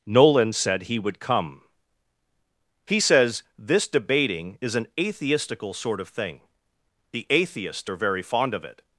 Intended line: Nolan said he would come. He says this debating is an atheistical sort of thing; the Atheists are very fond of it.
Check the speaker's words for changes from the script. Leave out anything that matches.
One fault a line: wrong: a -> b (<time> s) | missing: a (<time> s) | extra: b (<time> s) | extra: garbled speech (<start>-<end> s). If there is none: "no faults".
no faults